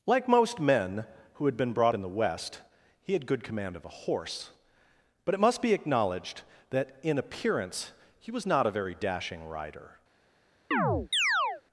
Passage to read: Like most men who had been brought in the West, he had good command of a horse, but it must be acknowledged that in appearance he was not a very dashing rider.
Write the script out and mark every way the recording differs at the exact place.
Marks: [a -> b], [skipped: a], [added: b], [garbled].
Like most men who had been brought in the West, he had good command of a horse, but it must be acknowledged that in appearance he was not a very dashing rider.